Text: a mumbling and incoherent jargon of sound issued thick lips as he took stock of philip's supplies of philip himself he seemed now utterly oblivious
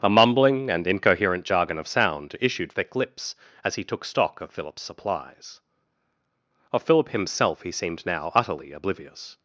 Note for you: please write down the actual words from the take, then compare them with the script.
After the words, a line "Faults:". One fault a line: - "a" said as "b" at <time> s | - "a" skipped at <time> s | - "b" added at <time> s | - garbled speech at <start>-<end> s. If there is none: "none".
a mumbling and incoherent jargon of sound issued thick lips as he took stock of philip's supplies of philip himself he seemed now utterly oblivious
Faults:
none